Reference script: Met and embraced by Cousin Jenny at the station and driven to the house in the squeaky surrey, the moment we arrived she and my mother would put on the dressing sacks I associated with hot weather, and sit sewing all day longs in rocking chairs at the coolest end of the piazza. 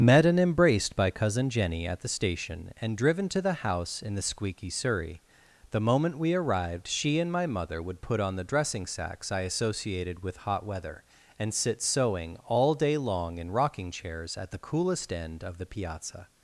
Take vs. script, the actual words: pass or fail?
fail